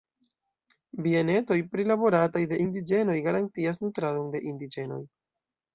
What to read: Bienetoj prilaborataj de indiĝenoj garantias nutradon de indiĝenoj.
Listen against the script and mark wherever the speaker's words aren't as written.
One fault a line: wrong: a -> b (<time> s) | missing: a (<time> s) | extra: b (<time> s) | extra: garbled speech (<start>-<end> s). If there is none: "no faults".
no faults